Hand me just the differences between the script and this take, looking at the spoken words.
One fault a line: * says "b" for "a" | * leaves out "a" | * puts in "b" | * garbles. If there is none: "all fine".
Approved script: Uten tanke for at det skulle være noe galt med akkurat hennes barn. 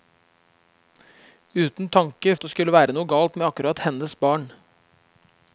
* leaves out "for"